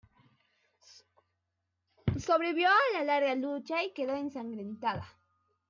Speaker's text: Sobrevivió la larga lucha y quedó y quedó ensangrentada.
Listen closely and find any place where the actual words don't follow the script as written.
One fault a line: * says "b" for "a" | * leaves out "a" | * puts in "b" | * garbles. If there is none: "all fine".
* puts in "a"
* leaves out "y quedó"